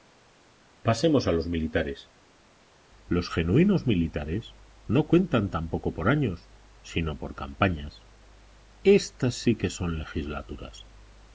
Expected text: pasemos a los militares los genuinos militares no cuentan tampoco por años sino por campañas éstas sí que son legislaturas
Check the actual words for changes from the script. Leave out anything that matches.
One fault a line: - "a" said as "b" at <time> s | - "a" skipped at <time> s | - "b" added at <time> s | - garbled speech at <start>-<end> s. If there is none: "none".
none